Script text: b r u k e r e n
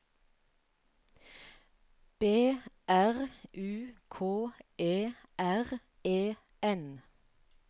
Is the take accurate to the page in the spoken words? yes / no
yes